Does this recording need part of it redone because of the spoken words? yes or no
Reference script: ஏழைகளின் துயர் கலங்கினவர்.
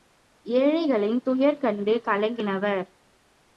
yes